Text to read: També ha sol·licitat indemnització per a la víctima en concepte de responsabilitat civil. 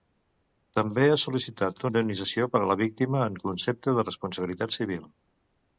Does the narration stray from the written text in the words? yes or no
no